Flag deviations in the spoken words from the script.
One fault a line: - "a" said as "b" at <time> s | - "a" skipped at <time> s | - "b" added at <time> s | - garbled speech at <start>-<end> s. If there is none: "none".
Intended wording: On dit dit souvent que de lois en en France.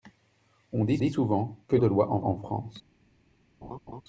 none